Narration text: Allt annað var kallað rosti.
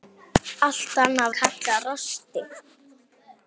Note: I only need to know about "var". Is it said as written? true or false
false